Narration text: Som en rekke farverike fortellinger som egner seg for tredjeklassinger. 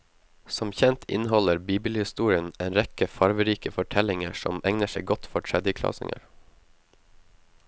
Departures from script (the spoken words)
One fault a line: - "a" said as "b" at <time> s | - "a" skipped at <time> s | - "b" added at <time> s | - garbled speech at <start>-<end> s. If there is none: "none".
- "kjent inneholder bibelhistorien" added at 0.8 s
- "godt" added at 5.1 s